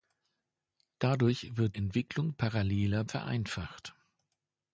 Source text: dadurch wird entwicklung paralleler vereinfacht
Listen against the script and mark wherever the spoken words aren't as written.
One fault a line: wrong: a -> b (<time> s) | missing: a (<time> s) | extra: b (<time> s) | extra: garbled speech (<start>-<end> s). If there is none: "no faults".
no faults